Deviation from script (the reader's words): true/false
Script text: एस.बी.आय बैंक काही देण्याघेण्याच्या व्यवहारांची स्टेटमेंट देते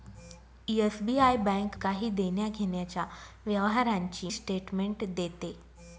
false